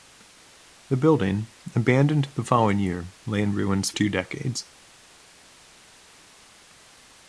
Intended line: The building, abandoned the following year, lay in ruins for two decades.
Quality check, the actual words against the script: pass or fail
fail